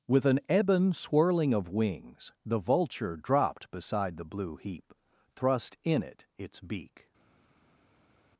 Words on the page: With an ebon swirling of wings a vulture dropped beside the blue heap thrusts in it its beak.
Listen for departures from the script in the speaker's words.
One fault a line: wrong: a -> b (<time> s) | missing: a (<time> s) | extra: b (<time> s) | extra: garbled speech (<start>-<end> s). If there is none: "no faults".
wrong: a -> the (2.4 s)
wrong: thrusts -> thrust (5.3 s)